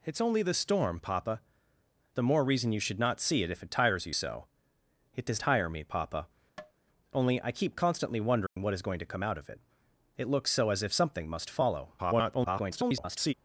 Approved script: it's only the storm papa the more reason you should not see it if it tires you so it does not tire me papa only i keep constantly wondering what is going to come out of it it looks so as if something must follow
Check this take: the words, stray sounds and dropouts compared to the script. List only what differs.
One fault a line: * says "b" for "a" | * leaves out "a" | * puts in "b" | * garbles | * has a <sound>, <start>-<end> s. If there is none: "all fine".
* leaves out "not"
* has a tap, 6.6-6.7 s
* has a dropout, 8.5-8.6 s
* garbles